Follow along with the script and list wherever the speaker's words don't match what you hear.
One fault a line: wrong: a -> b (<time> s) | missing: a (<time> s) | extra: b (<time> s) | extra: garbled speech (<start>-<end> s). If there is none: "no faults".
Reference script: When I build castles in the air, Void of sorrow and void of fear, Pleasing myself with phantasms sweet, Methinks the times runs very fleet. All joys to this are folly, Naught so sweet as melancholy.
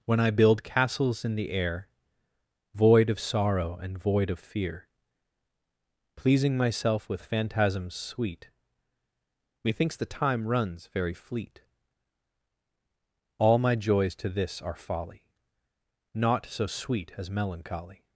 wrong: times -> time (10.1 s)
extra: my (13.6 s)